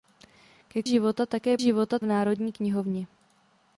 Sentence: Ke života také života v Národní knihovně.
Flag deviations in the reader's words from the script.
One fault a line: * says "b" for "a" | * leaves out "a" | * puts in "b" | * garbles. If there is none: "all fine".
all fine